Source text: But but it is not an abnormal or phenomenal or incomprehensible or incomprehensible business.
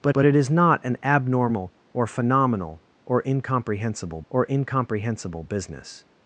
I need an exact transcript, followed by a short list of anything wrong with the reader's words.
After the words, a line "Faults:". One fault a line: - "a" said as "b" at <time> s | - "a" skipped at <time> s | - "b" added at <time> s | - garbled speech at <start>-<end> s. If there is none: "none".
But but it is not an abnormal or phenomenal or incomprehensible or incomprehensible business.
Faults:
none